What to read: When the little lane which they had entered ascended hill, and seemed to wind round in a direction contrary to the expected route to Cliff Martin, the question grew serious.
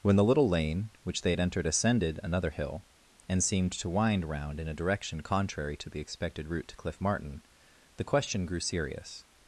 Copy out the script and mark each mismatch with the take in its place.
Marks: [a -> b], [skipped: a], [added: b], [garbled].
When the little lane which they had entered ascended [added: another] hill, and seemed to wind round in a direction contrary to the expected route to Cliff Martin, the question grew serious.